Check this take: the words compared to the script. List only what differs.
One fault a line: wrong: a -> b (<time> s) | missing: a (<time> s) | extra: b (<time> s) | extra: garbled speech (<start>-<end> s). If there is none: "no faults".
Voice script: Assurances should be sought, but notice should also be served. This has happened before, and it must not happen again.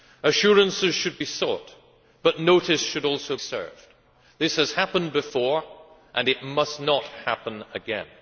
missing: be (3.4 s)